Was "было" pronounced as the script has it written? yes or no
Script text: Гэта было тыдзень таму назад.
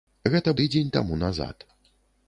no